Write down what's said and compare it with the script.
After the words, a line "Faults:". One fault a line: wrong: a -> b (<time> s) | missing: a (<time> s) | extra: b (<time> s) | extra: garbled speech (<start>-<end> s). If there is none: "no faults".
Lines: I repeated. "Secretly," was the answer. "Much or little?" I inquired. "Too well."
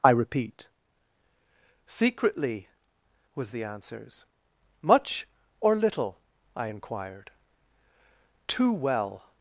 I repeat. "Secretly," was the answers. "Much or little?" I inquired. "Too well."
Faults:
wrong: repeated -> repeat (0.1 s)
wrong: answer -> answers (3.6 s)